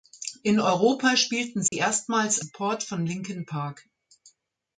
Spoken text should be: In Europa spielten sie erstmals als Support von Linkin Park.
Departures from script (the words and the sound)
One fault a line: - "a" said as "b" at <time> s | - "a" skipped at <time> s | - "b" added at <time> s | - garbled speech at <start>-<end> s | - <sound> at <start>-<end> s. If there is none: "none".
- dropout at 1.7-1.7 s
- "als" skipped at 2.4 s